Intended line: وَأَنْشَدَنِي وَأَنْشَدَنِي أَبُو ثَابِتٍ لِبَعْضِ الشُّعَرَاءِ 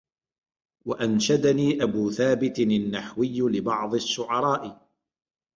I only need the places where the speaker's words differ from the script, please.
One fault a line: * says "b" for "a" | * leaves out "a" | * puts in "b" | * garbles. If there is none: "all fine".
* leaves out "وَأَنْشَدَنِي"
* puts in "النَّحْوِيُّ"